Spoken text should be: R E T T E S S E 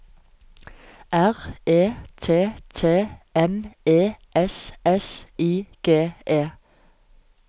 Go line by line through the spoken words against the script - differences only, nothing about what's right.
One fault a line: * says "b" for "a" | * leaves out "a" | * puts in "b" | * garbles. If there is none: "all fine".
* puts in "M"
* puts in "I G"